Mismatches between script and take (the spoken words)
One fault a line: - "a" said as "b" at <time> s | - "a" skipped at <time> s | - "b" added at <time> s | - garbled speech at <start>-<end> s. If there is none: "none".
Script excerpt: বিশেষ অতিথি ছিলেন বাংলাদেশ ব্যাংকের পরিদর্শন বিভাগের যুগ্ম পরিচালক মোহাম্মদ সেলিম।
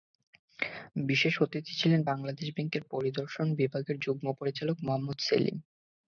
none